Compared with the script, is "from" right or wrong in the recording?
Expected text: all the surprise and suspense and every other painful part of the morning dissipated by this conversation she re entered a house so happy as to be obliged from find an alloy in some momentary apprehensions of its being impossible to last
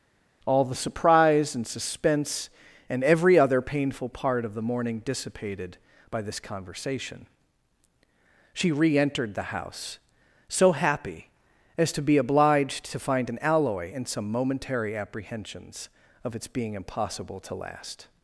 wrong